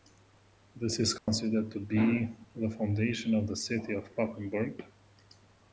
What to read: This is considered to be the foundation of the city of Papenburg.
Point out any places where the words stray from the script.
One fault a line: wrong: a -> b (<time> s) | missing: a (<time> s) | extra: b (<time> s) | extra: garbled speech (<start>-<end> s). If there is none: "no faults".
no faults